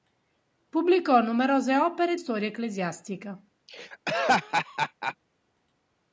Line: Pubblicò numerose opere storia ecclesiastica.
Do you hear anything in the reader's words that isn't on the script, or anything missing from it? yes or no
no